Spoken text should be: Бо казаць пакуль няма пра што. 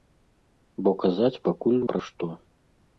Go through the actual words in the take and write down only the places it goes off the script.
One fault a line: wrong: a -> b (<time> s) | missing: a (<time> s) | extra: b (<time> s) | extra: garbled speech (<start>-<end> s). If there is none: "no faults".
missing: няма (1.8 s)